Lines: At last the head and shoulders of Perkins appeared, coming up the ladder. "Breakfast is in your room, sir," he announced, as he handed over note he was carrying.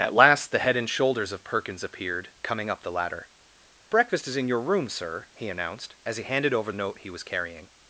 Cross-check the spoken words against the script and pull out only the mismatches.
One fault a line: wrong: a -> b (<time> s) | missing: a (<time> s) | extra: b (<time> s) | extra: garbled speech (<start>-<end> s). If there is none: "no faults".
no faults